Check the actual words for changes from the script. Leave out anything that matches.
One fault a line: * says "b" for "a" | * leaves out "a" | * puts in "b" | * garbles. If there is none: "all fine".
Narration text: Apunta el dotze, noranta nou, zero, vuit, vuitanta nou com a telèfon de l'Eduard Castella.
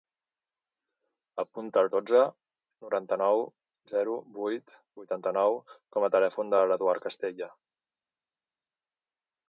all fine